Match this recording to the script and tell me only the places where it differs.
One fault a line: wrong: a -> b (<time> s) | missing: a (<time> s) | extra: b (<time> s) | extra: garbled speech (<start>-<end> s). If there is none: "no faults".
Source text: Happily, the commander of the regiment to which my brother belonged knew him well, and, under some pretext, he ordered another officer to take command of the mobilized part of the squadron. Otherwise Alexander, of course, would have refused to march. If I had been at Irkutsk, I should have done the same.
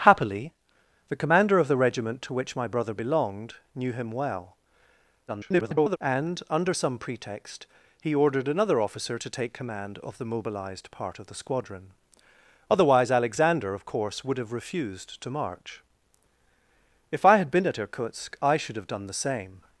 extra: garbled speech (5.3-6.0 s)